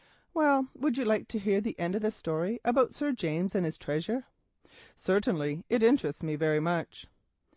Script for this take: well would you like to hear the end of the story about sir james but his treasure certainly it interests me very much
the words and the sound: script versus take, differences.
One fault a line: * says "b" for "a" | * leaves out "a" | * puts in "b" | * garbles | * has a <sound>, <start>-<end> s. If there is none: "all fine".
* says "and" for "but"